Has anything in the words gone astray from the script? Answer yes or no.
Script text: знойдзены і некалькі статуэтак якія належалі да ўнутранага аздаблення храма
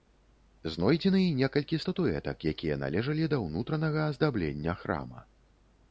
no